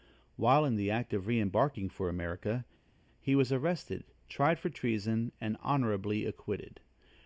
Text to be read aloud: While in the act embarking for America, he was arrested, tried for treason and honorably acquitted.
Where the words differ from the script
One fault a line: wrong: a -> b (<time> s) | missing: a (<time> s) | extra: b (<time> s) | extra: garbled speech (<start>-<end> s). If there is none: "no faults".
extra: of re (1.1 s)